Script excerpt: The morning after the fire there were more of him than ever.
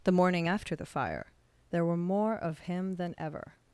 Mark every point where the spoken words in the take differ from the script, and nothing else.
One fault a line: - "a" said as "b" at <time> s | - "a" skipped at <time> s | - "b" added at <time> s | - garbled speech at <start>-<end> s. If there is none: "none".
none